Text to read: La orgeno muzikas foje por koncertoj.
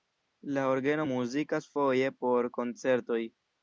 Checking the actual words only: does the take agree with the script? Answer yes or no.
yes